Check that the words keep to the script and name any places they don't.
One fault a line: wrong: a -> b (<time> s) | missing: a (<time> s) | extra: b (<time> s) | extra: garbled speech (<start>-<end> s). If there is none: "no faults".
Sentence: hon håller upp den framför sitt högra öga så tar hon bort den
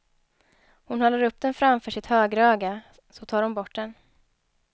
no faults